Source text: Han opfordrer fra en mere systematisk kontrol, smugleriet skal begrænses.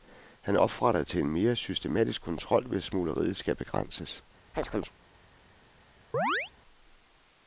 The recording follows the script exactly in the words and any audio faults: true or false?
false